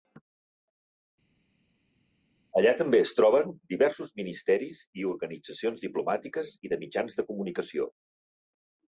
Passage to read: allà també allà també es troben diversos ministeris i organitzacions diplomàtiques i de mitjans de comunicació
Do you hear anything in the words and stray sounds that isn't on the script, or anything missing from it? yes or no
yes